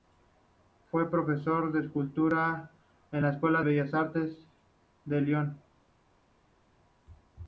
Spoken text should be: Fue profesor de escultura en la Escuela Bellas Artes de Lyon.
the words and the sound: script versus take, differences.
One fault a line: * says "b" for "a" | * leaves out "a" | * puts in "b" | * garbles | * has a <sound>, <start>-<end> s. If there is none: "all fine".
all fine